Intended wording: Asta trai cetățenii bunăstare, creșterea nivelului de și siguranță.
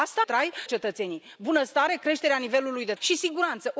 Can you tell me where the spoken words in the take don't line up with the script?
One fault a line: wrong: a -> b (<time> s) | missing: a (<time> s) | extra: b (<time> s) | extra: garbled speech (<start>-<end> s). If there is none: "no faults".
no faults